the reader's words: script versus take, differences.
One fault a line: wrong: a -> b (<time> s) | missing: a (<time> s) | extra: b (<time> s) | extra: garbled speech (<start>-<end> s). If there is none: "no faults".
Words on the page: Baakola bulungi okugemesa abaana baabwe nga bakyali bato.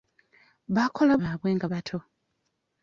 missing: bulungi okugemesa abaana (1.1 s)
missing: bakyali (1.7 s)